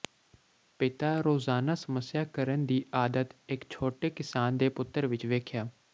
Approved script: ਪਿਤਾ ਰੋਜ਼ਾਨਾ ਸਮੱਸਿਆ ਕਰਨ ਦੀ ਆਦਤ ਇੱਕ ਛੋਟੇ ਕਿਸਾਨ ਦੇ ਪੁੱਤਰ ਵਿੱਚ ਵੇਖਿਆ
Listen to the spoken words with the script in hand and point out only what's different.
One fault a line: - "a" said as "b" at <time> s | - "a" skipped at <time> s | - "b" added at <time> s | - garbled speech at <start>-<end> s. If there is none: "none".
none